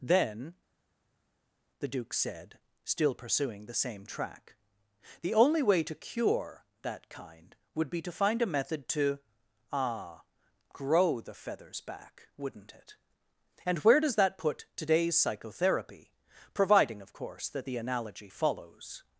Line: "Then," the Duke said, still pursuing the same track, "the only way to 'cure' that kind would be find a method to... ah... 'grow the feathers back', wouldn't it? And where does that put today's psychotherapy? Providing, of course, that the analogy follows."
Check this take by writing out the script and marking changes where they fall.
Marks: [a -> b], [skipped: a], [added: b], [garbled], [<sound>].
"Then," the Duke said, still pursuing the same track, "the only way to 'cure' that kind would be [added: to] find a method to... ah... 'grow the feathers back', wouldn't it? And where does that put today's psychotherapy? Providing, of course, that the analogy follows."